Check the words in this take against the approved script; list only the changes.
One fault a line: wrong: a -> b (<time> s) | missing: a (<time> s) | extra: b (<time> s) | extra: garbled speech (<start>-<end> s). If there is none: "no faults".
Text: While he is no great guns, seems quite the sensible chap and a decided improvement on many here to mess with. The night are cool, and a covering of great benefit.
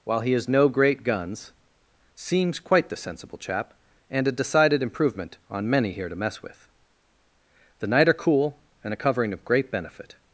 no faults